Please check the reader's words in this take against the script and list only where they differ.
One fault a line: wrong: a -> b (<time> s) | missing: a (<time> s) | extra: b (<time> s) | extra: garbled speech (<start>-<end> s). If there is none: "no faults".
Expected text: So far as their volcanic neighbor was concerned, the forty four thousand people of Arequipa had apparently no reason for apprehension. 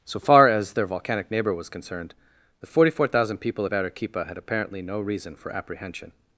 no faults